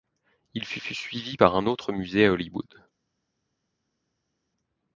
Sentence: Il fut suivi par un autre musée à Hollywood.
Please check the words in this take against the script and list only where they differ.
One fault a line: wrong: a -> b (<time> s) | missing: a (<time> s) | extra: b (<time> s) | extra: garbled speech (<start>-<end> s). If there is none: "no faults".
extra: fut (0.8 s)